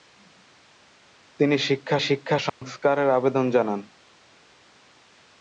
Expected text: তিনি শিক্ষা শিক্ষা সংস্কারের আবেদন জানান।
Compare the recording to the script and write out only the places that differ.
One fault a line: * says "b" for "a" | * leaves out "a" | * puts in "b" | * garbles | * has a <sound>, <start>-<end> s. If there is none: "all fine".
* has a dropout, 2.5-2.6 s